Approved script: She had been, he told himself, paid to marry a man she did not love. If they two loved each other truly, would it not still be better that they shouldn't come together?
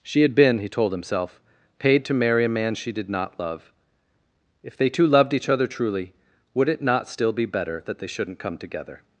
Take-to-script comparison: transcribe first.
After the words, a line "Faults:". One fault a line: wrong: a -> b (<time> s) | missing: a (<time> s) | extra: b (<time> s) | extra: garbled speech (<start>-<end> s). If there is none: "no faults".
She had been, he told himself, paid to marry a man she did not love. If they two loved each other truly, would it not still be better that they shouldn't come together?
Faults:
no faults